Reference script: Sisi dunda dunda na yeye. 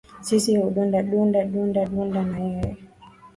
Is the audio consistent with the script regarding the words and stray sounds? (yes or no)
no